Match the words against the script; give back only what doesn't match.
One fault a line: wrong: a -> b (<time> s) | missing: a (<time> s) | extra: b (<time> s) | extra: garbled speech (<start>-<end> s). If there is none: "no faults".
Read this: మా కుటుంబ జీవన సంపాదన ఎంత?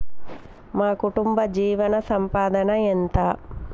no faults